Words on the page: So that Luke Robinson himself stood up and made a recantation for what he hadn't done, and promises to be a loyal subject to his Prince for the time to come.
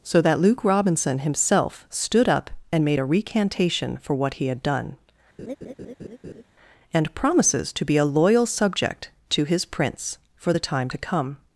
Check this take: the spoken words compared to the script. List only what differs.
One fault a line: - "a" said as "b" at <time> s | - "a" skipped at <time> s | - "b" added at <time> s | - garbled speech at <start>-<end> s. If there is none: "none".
- "hadn't" said as "had" at 4.5 s